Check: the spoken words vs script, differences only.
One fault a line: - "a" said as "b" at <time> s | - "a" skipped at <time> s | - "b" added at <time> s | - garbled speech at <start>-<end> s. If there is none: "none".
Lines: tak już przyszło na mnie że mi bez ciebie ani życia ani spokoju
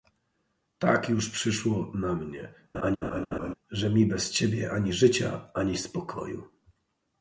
none